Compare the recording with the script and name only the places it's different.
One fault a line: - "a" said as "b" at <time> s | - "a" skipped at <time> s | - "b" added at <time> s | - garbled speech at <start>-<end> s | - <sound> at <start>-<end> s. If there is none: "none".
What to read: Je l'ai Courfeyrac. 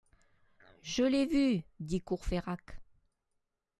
- "vu dit" added at 1.3 s